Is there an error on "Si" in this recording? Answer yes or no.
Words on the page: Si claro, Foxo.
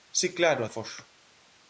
no